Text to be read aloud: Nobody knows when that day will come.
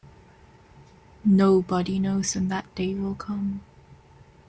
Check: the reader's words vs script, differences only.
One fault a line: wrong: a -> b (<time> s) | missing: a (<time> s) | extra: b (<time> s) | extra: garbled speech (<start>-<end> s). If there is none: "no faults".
no faults